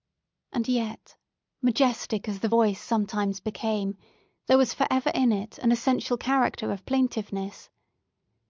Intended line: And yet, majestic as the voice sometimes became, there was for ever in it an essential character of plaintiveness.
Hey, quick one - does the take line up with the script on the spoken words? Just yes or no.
yes